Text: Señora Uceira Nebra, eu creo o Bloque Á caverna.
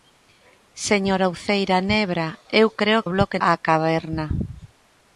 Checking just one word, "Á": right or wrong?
right